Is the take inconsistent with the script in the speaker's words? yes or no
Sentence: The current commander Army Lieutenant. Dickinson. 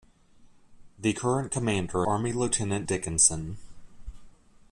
no